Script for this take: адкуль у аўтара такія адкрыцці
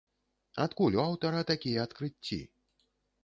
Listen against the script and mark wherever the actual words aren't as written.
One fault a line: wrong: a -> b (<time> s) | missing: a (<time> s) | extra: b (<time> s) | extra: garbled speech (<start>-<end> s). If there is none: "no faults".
no faults